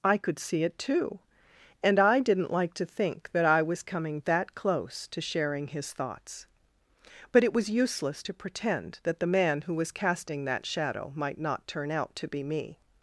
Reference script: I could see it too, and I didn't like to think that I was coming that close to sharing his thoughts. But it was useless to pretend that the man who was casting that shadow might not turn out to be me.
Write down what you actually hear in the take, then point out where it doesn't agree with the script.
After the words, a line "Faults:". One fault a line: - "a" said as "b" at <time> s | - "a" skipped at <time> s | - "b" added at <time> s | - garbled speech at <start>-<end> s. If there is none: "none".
I could see it too, and I didn't like to think that I was coming that close to sharing his thoughts. But it was useless to pretend that the man who was casting that shadow might not turn out to be me.
Faults:
none